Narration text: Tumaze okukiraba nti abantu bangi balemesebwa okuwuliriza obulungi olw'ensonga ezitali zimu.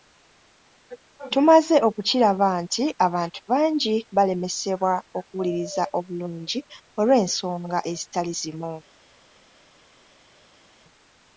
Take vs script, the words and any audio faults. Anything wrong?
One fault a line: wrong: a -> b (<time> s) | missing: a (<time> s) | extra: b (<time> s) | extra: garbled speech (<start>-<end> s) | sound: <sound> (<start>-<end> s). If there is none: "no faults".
no faults